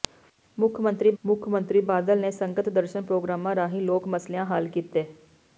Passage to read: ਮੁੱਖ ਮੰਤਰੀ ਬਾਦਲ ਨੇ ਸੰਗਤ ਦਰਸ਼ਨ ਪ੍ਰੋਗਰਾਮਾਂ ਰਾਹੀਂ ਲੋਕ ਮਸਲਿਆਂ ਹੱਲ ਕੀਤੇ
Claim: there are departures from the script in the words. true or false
true